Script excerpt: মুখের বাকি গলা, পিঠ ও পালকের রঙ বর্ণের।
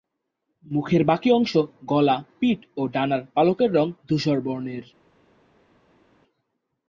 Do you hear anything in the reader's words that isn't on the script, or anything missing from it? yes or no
yes